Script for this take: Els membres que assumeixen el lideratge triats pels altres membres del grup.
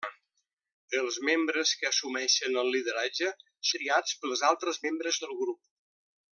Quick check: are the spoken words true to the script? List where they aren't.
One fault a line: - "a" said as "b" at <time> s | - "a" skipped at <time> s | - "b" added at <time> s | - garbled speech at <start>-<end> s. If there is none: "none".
none